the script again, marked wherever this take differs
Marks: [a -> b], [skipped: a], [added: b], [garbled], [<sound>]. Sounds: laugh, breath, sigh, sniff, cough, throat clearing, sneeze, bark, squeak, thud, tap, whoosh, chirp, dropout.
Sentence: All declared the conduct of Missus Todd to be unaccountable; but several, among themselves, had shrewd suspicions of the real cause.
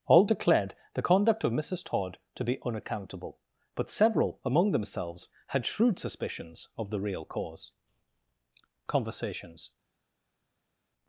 All declared the conduct of Missus Todd to be unaccountable; but several, among themselves, had shrewd suspicions of the real cause. [added: Conversations]